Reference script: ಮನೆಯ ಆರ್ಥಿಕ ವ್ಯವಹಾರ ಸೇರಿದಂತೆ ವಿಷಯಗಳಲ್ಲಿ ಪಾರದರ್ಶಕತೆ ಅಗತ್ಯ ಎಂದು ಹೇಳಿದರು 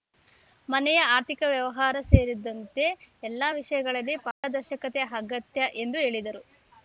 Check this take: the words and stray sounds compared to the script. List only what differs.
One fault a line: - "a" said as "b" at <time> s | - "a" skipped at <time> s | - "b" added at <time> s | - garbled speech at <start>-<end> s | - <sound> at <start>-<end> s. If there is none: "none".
- "ಎಲ್ಲ" added at 3.2 s
- dropout at 4.3-4.4 s